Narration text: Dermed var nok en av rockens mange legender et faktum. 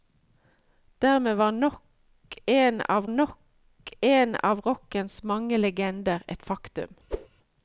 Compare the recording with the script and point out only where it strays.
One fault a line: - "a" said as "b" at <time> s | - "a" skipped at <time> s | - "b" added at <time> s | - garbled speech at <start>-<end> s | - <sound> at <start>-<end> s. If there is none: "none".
- "nok en av" added at 3.1 s
- whoosh at 7.1-7.3 s